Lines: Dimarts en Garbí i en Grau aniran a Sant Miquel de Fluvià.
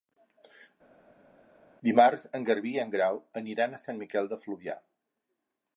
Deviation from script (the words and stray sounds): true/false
false